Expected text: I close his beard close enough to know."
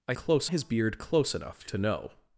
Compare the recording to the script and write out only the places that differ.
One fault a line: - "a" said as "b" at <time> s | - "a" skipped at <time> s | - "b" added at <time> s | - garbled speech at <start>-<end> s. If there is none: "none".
none